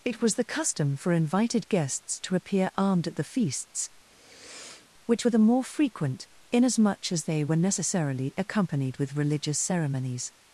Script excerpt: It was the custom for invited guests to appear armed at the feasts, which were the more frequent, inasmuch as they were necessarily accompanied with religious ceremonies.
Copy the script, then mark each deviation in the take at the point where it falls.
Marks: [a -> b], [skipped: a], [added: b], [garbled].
It was the custom for invited guests to appear armed at the feasts, which were the more frequent, inasmuch as they were necessarily accompanied with religious ceremonies.